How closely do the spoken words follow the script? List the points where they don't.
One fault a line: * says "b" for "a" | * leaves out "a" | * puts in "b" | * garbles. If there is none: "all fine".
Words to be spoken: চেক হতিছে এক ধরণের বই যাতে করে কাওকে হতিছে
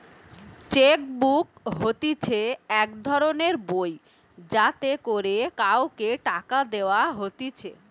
* puts in "বুক"
* puts in "টাকা দেওয়া"